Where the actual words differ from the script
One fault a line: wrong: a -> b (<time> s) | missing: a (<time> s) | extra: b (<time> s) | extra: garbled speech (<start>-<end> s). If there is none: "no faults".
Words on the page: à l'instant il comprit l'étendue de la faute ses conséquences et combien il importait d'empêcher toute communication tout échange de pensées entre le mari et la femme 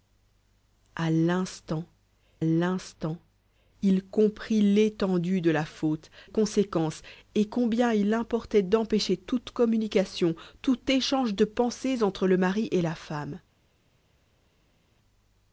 extra: l'instant (2.4 s)
missing: ses (6.1 s)